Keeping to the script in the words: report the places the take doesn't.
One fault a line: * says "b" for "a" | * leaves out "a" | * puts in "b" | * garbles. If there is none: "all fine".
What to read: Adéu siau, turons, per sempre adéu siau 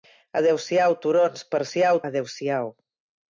* says "siau" for "sempre"